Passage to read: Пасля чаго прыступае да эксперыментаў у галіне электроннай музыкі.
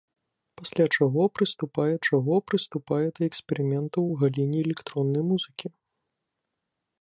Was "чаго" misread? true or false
false